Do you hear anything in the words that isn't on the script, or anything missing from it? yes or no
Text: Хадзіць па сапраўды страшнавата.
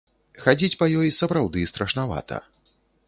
yes